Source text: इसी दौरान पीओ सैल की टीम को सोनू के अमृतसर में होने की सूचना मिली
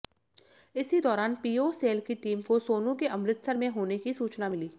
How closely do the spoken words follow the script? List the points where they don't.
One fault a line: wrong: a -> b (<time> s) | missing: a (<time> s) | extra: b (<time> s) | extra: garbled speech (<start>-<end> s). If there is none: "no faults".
no faults